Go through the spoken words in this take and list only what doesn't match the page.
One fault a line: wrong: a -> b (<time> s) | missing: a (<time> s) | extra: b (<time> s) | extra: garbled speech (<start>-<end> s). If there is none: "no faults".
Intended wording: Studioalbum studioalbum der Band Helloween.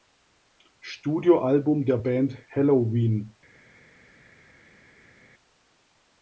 missing: studioalbum (1.9 s)